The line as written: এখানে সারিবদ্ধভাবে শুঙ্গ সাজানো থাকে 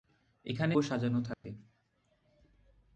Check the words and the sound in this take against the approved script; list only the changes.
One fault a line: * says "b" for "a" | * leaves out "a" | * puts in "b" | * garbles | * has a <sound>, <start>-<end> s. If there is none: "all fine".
* leaves out "সারিবদ্ধভাবে শুঙ্গ"
* has a dropout, 1.3-1.4 s